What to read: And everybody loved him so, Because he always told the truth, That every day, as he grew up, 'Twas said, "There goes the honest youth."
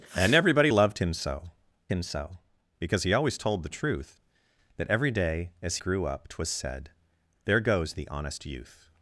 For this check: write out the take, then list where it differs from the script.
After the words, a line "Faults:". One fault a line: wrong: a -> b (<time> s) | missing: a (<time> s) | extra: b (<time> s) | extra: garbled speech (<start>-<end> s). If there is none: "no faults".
And everybody loved him so him so, Because he always told the truth, That every day, as grew up, 'Twas said, "There goes the honest youth."
Faults:
extra: him so (1.9 s)
missing: he (5.8 s)